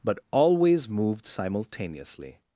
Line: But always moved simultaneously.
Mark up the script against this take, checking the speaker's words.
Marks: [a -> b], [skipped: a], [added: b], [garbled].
But always moved simultaneously.